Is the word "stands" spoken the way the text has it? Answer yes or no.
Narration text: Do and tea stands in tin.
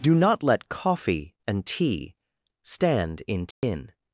no